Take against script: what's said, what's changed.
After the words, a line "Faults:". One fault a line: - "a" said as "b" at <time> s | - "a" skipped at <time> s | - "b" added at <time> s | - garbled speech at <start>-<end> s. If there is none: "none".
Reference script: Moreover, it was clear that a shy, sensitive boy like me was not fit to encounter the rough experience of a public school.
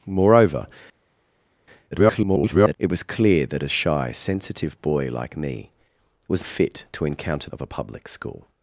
Moreover, [garbled] it was clear that a shy, sensitive boy like me was fit to encounter of a public school.
Faults:
- garbled speech at 1.9-2.8 s
- "not" skipped at 6.4 s
- "the rough experience" skipped at 7.5 s